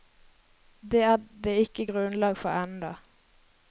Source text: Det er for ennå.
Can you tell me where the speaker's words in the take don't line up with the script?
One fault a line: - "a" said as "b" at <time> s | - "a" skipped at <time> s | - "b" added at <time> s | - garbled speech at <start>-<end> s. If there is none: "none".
- "det ikke grunnlag" added at 1.4 s